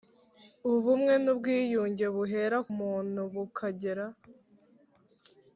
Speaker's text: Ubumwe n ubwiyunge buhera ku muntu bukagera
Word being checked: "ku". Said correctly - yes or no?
no